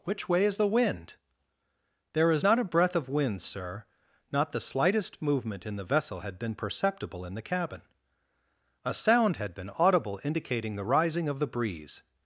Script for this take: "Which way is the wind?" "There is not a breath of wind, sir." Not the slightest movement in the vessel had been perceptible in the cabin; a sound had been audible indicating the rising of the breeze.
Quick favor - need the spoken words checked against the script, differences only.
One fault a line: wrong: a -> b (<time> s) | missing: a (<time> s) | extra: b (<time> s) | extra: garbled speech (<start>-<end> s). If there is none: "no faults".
no faults